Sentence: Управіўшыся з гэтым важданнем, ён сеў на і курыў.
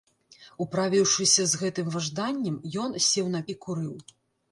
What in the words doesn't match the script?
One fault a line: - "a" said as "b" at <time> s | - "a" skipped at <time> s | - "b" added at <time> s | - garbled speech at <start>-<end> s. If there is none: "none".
none